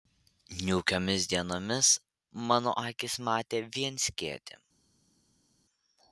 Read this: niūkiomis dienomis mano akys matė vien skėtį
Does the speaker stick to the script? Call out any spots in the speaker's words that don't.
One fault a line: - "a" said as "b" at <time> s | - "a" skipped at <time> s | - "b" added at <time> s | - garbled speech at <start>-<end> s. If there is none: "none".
none